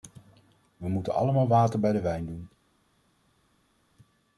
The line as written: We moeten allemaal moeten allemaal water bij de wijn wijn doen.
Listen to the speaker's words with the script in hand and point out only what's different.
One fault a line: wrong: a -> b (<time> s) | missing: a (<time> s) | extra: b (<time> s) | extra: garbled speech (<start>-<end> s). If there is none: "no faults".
missing: moeten allemaal (1.5 s)
missing: wijn (2.2 s)